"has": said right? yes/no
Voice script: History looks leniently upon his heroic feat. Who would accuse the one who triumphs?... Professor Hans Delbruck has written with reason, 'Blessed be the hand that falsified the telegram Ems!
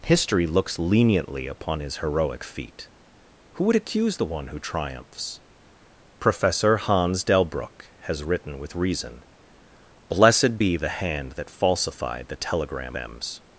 yes